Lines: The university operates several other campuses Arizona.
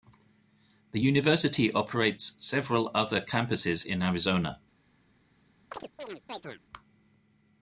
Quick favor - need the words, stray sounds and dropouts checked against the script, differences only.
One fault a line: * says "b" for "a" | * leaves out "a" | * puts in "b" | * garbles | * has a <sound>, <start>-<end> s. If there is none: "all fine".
* puts in "in"
* has a chirp, 5.7-6.6 s